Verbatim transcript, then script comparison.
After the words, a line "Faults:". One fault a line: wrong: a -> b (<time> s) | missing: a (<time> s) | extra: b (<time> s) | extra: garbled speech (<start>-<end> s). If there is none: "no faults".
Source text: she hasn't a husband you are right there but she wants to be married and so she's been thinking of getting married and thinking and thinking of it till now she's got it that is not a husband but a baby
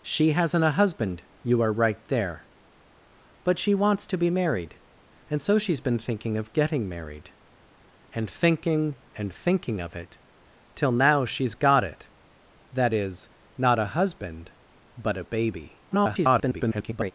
she hasn't a husband you are right there but she wants to be married and so she's been thinking of getting married and thinking and thinking of it till now she's got it that is not a husband but a baby [garbled]
Faults:
extra: garbled speech (15.9-17.1 s)